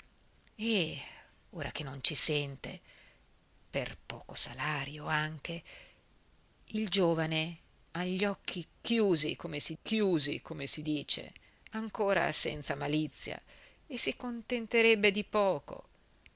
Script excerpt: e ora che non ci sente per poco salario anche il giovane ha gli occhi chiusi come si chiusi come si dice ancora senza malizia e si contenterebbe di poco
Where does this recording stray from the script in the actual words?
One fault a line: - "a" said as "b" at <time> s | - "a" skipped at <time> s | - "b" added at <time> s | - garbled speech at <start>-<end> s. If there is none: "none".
none